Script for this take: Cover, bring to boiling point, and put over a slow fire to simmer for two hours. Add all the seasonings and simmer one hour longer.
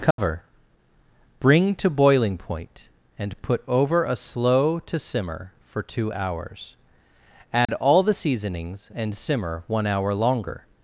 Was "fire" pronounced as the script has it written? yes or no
no